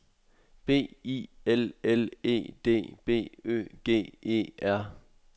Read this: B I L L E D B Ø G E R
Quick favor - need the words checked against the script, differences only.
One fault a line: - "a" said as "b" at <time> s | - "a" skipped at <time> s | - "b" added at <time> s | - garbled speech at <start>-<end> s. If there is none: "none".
none